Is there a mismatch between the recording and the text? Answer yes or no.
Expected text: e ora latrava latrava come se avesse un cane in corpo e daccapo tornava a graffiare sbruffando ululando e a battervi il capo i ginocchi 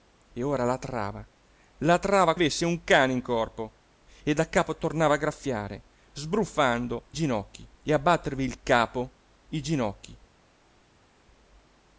yes